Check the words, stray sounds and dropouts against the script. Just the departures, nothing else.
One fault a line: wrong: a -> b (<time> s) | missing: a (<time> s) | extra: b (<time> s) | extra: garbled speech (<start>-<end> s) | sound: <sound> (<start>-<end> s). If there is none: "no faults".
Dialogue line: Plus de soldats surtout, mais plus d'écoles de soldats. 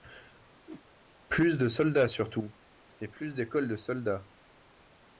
sound: whoosh (0.7-0.9 s)
wrong: mais -> et (3.0 s)